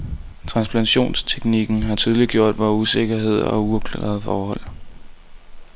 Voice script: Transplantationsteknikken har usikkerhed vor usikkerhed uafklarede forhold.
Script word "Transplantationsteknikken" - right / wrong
right